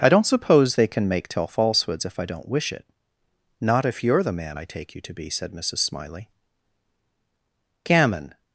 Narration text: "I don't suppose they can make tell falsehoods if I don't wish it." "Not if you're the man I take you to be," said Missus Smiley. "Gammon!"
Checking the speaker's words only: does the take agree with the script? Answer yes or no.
yes